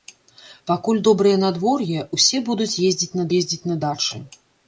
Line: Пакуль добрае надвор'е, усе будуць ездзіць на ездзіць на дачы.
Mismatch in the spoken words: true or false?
false